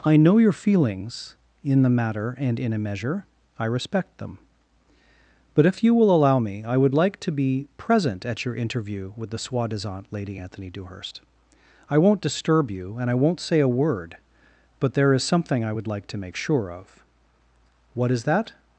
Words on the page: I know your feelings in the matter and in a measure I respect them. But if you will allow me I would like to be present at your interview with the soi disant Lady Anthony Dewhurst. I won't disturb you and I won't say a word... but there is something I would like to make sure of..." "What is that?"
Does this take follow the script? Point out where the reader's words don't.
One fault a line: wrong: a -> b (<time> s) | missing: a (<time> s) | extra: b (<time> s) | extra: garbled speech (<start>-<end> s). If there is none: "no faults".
no faults